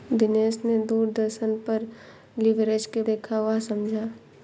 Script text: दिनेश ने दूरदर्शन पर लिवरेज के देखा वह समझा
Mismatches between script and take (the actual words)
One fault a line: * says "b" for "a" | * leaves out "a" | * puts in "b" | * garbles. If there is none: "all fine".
all fine